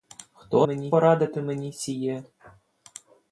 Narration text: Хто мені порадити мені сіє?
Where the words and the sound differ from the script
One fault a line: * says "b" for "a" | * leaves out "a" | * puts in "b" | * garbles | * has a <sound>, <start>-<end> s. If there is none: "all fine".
all fine